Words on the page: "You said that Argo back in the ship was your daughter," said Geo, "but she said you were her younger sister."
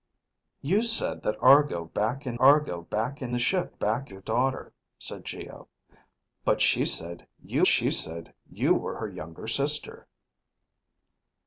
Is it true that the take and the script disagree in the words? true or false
true